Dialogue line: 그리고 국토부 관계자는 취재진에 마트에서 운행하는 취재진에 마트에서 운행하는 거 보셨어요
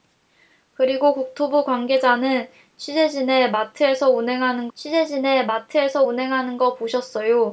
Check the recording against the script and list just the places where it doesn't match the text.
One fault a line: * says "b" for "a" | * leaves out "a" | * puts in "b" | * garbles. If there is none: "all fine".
all fine